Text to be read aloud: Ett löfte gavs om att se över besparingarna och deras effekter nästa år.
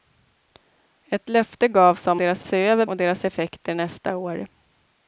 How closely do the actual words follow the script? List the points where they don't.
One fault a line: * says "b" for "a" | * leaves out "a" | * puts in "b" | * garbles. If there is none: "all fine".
* says "deras" for "att"
* leaves out "besparingarna"